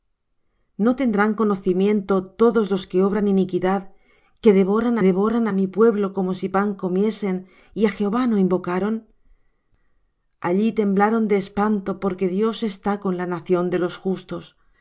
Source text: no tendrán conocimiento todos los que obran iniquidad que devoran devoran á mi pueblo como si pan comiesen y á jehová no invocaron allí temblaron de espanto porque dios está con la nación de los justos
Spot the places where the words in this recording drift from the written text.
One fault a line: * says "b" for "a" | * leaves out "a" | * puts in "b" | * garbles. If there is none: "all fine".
all fine